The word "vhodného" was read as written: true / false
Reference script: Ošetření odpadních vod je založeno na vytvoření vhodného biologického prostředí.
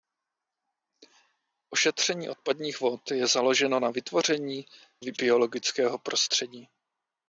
false